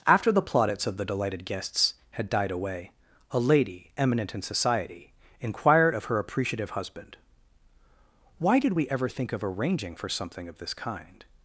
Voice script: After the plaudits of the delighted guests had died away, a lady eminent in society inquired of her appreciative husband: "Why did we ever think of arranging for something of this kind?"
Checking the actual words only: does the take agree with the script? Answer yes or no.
yes